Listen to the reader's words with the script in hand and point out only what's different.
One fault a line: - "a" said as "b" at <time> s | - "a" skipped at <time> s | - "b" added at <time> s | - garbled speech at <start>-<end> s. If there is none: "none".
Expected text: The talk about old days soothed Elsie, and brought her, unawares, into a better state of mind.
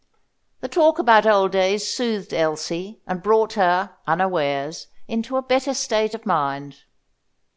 none